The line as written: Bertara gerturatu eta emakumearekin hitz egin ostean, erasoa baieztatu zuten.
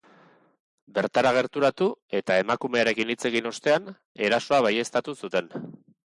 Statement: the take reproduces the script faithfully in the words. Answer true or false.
true